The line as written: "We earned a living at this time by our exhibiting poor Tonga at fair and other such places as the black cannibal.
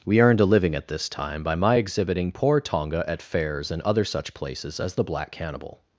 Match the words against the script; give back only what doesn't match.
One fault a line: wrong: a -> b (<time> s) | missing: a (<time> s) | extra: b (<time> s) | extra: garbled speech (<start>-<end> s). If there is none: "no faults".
wrong: our -> my (1.5 s)
wrong: fair -> fairs (3.2 s)